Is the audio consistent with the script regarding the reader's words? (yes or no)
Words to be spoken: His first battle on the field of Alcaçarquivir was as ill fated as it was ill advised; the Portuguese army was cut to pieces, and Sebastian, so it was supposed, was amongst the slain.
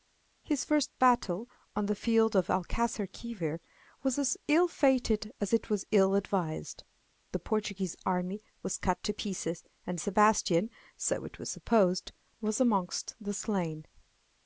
yes